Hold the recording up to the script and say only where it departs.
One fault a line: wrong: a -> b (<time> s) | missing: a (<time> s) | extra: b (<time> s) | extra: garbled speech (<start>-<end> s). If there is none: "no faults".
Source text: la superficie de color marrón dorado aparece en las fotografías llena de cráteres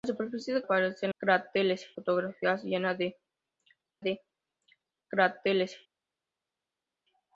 missing: color marrón dorado (0.7 s)
wrong: las -> cráteres (1.2 s)
extra: de (4.0 s)